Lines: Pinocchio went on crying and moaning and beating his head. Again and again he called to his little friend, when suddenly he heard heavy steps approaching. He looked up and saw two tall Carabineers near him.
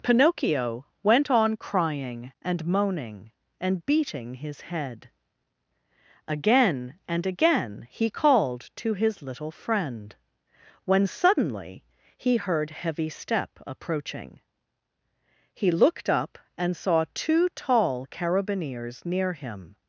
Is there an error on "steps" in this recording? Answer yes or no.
yes